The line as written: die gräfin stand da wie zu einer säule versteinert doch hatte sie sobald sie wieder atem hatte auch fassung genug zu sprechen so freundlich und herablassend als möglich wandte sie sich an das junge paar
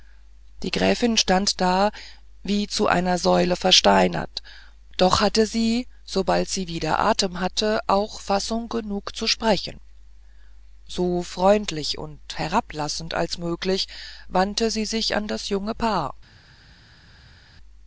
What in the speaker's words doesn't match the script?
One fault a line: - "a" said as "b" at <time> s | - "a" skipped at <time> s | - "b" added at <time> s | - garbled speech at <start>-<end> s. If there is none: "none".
none